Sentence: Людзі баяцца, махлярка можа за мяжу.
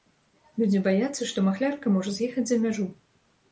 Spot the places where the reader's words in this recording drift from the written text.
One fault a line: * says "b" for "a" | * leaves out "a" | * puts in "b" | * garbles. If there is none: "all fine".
* puts in "што"
* puts in "з'ехаць"